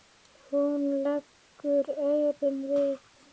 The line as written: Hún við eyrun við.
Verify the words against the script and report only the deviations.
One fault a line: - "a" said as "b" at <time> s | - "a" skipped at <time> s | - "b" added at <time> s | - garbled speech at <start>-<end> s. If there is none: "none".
- "við" said as "leggur" at 1.0 s